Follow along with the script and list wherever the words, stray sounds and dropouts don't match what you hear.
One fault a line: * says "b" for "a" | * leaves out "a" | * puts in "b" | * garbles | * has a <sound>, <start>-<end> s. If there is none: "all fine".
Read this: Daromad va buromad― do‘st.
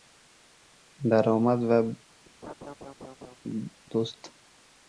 * leaves out "buromad"
* has a laugh, 2.4-3.4 s